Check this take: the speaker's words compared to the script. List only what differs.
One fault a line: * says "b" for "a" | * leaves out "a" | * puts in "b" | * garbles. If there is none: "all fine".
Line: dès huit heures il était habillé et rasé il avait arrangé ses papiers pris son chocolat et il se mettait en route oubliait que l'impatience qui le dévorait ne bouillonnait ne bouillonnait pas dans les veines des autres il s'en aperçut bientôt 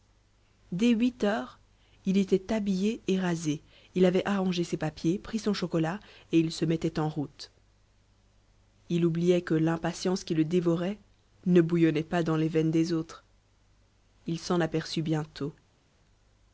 * puts in "il"
* leaves out "ne bouillonnait"